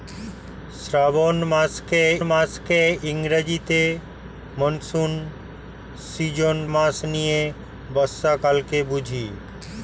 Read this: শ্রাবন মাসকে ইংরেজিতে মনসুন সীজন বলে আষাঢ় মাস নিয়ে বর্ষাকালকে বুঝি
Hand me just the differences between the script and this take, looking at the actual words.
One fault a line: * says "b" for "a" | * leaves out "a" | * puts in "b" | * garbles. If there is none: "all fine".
* puts in "মাসকে"
* leaves out "বলে আষাঢ়"